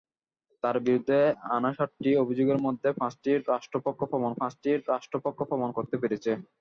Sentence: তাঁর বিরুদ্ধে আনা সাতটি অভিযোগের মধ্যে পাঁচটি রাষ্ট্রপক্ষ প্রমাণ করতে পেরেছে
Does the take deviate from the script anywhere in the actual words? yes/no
yes